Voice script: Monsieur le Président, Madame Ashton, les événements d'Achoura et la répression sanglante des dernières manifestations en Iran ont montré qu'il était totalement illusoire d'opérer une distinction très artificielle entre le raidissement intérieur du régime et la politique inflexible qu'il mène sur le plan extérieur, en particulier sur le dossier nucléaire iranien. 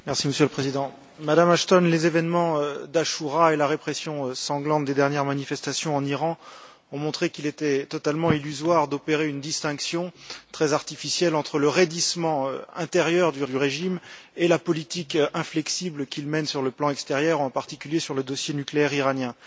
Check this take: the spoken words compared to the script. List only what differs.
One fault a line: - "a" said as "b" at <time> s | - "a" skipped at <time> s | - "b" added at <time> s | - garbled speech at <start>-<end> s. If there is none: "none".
- "du" added at 13.4 s